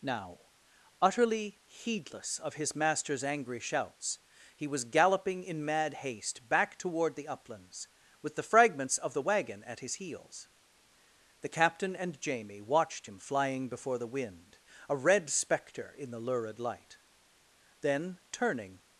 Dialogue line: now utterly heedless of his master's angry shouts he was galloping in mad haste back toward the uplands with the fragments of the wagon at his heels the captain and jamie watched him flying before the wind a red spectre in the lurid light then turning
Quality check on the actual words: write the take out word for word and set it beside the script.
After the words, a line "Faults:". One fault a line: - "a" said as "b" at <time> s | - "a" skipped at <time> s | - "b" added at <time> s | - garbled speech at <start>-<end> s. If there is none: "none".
now utterly heedless of his master's angry shouts he was galloping in mad haste back toward the uplands with the fragments of the wagon at his heels the captain and jamie watched him flying before the wind a red spectre in the lurid light then turning
Faults:
none